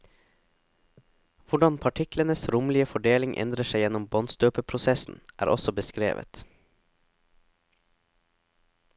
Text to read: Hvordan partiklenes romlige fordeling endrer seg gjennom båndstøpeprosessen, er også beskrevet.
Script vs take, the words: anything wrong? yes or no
no